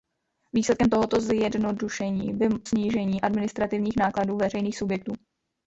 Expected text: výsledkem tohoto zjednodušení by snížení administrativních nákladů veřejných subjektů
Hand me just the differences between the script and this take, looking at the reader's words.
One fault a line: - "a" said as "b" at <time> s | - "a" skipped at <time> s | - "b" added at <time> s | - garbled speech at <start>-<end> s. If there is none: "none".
none